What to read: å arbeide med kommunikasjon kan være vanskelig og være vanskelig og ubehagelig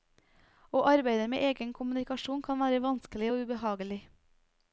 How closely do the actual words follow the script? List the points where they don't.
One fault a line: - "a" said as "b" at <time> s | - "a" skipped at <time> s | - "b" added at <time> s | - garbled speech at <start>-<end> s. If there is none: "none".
- "egen" added at 1.5 s
- "være vanskelig og" skipped at 3.4 s